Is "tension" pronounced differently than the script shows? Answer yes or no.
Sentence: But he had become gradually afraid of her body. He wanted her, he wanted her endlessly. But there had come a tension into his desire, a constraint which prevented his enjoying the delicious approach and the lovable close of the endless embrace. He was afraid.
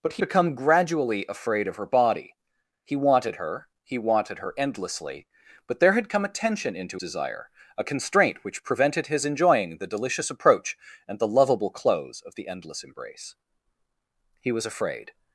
no